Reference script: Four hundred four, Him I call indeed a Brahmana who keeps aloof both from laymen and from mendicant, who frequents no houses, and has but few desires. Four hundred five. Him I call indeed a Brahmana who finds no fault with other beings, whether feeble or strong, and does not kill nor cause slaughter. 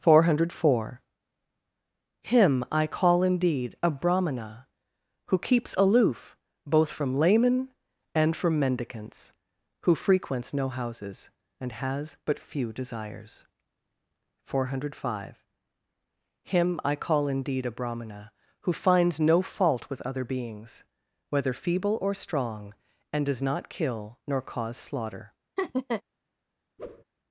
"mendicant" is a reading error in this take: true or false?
true